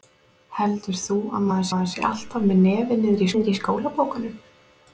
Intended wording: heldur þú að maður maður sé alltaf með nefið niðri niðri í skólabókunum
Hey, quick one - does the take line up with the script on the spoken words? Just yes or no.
yes